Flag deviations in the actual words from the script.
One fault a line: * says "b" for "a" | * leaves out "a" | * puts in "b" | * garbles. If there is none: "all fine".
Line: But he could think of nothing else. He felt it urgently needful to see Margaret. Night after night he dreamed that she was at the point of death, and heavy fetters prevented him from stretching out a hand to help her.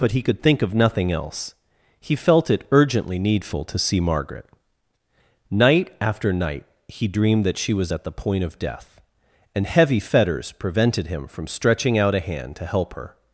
all fine